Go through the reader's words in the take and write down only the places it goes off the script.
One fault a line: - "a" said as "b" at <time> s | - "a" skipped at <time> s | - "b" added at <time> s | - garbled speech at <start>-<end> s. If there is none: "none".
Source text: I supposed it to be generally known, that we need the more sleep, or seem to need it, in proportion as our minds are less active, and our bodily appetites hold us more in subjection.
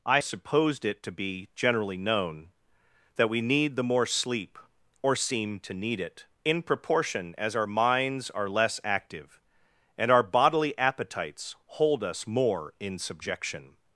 none